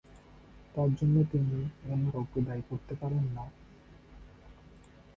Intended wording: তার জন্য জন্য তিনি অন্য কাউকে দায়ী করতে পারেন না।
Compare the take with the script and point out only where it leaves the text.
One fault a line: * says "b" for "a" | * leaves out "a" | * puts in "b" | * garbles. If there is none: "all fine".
* leaves out "জন্য"